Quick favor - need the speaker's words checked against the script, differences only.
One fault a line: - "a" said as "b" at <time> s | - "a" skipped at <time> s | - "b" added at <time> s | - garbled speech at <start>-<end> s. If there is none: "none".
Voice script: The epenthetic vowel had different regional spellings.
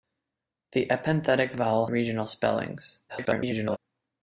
- "had different" skipped at 1.9 s
- garbled speech at 3.1-3.8 s